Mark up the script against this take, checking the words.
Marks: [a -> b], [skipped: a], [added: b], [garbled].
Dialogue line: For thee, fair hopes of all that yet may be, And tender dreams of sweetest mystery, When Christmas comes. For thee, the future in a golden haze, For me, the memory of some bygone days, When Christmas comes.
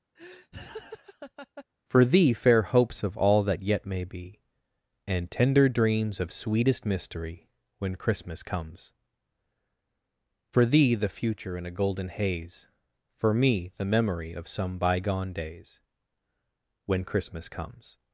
For thee, fair hopes of all that yet may be, And tender dreams of sweetest mystery, When Christmas comes. For thee, the future in a golden haze, For me, the memory of some bygone days, When Christmas comes.